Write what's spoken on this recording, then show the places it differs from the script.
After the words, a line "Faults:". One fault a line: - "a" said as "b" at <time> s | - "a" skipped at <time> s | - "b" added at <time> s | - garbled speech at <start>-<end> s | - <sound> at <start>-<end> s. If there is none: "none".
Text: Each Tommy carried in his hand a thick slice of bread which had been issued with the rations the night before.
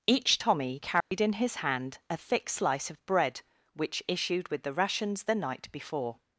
Each Tommy carried in his hand a thick slice of bread which issued with the rations the night before.
Faults:
- dropout at 1.0-1.1 s
- "had been" skipped at 4.0 s